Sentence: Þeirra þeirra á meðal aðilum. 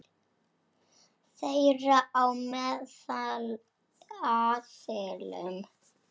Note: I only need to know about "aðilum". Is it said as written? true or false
true